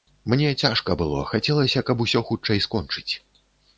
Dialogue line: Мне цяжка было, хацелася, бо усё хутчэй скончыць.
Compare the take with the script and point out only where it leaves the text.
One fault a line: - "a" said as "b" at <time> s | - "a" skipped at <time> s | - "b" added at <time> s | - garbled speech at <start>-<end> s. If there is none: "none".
- "бо" said as "каб" at 1.9 s